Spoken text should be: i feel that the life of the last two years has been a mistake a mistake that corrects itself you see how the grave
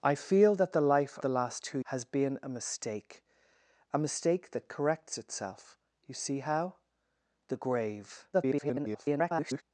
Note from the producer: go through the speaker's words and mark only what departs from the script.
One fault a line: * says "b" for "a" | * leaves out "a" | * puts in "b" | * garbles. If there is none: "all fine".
* leaves out "of"
* leaves out "years"
* garbles